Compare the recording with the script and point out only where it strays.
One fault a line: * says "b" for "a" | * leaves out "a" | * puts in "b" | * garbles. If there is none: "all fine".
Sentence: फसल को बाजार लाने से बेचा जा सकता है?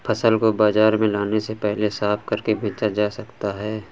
* puts in "में"
* puts in "पहले साफ करके"